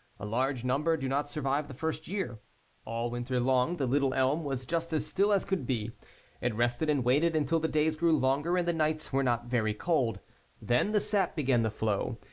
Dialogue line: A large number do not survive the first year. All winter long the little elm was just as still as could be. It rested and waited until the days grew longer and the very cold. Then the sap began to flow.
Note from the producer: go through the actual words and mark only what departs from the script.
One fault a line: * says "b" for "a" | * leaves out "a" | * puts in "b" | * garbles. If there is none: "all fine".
* puts in "nights were not"